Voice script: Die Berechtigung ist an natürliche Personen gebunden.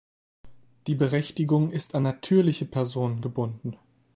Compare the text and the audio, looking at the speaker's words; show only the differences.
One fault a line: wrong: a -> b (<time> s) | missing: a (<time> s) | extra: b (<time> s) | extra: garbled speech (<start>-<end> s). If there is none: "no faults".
no faults